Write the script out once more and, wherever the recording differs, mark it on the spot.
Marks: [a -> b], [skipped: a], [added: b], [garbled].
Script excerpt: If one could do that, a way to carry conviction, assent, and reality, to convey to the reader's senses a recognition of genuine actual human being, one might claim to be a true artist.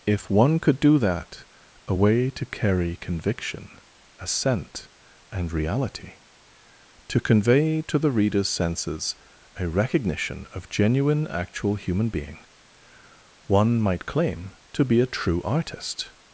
If one could do that, a way to carry conviction, assent, and reality, to convey to the reader's senses a recognition of genuine actual human being, one might claim to be a true artist.